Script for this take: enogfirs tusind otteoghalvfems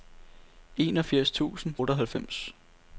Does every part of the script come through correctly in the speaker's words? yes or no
yes